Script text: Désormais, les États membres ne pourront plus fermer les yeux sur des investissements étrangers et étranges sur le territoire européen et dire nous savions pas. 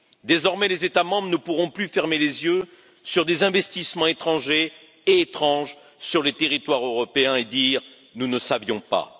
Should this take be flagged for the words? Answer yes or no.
yes